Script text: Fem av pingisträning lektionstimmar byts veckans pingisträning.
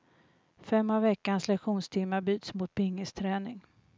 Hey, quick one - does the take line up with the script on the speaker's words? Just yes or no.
no